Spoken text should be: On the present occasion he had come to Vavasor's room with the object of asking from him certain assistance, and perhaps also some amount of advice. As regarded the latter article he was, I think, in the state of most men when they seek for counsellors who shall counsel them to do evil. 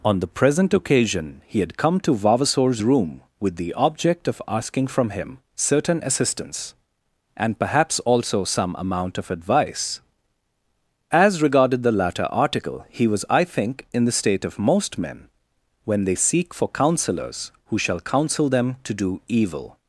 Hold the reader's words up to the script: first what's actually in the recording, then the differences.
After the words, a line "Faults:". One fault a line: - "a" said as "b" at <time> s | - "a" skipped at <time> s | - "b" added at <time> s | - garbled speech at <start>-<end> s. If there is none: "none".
On the present occasion he had come to Vavasor's room with the object of asking from him certain assistance, and perhaps also some amount of advice. As regarded the latter article he was, I think, in the state of most men when they seek for counsellors who shall counsel them to do evil.
Faults:
none